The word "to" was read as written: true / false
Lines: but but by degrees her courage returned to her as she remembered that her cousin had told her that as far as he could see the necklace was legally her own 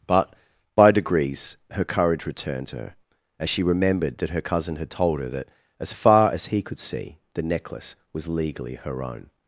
true